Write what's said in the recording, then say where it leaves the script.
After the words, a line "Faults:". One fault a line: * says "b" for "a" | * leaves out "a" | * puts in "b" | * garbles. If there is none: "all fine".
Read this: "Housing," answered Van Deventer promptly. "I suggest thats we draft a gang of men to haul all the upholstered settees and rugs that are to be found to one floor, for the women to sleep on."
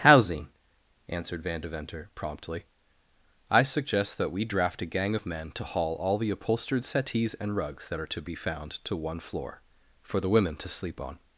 "Housing," answered Van Deventer promptly. "I suggest that we draft a gang of men to haul all the upholstered settees and rugs that are to be found to one floor, for the women to sleep on."
Faults:
* says "that" for "thats"